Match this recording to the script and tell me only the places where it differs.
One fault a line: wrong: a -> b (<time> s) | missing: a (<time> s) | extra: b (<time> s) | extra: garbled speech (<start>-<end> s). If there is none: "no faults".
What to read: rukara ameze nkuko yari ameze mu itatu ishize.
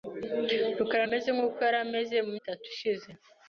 no faults